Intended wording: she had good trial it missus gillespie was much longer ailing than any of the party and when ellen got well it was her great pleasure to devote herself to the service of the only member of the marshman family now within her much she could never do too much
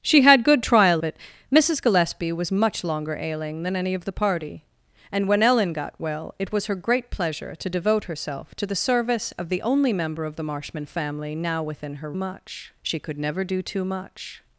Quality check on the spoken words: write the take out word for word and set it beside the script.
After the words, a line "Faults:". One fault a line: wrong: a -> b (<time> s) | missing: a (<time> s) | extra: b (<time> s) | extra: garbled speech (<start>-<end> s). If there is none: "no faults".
she had good trial it missus gillespie was much longer ailing than any of the party and when ellen got well it was her great pleasure to devote herself to the service of the only member of the marshman family now within her much she could never do too much
Faults:
no faults